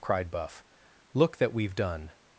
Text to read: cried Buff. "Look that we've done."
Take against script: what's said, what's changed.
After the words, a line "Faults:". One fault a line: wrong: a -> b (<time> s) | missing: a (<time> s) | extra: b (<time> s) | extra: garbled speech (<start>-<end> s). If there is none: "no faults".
cried Buff. "Look that we've done."
Faults:
no faults